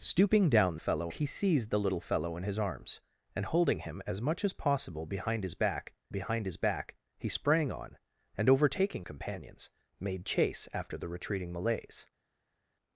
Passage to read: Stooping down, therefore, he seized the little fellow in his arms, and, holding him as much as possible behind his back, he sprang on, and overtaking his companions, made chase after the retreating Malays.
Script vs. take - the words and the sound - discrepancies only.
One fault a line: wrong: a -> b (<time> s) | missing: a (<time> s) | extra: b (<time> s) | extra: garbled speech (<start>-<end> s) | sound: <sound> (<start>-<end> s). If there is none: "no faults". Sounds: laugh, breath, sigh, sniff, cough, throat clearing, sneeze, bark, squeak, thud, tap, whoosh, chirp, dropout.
wrong: therefore -> fellow (0.8 s)
extra: behind his back (6.1 s)
missing: his (9.1 s)